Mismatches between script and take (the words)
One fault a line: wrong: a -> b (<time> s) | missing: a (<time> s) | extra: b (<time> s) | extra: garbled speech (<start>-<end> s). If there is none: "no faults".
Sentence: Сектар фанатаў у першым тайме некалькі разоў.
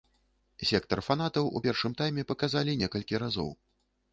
extra: паказалі (2.3 s)